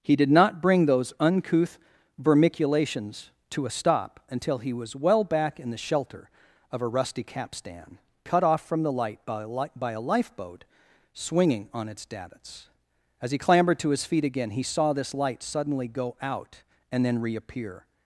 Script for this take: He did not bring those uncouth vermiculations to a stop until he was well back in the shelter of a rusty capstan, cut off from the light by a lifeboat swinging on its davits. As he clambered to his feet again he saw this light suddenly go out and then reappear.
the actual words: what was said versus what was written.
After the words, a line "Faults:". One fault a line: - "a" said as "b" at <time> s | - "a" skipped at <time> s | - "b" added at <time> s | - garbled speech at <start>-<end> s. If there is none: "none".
He did not bring those uncouth vermiculations to a stop until he was well back in the shelter of a rusty capstan, cut off from the light by a li by a lifeboat swinging on its davits. As he clambered to his feet again he saw this light suddenly go out and then reappear.
Faults:
- "li by a" added at 9.5 s